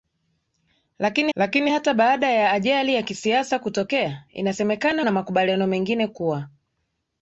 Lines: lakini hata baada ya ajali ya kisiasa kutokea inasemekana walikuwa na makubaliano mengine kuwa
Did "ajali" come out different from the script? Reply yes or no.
no